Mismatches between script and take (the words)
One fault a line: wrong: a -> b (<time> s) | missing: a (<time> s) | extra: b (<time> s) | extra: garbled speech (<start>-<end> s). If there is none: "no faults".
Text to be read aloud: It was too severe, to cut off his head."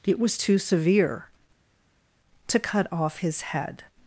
no faults